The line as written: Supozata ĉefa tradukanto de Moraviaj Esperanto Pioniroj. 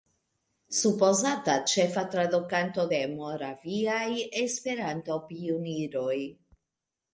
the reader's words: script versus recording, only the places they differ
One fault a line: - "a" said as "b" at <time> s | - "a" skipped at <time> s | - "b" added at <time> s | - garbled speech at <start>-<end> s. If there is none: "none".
none